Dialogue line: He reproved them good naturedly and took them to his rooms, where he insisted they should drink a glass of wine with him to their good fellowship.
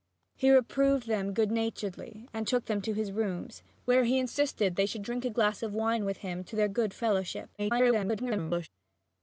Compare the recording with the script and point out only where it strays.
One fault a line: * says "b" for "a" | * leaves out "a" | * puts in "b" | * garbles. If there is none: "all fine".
* garbles